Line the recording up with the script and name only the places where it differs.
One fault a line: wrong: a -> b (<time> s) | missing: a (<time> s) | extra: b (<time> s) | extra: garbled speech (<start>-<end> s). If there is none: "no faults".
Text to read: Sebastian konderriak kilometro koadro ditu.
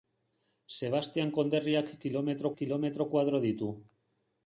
extra: kilometro (2.6 s)